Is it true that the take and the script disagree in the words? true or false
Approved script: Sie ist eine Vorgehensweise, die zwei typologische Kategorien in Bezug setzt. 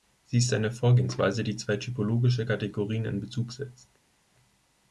false